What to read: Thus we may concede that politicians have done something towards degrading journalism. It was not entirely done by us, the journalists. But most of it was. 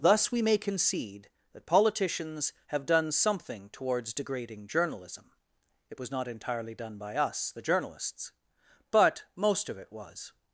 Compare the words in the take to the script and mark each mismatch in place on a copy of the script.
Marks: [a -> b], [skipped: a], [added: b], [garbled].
Thus we may concede that politicians have done something towards degrading journalism. It was not entirely done by us, the journalists. But most of it was.